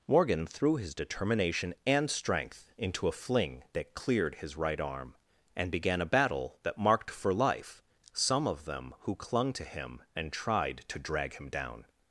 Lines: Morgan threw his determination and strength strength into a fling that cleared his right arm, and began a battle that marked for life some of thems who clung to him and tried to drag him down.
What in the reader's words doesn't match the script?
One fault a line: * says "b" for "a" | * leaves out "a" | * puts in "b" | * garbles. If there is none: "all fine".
* leaves out "strength"
* says "them" for "thems"